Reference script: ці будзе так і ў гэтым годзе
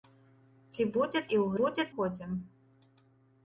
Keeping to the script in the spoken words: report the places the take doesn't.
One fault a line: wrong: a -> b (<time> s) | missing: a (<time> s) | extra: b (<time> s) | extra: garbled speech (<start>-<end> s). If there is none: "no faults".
missing: так (1.2 s)
wrong: гэтым -> будзе (1.6 s)